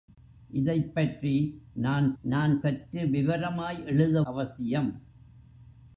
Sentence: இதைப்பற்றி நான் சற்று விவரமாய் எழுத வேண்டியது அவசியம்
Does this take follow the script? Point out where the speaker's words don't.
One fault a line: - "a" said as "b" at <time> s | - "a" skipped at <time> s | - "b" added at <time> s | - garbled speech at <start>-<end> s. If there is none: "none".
- "நான்" added at 2.2 s
- "வேண்டியது" skipped at 4.2 s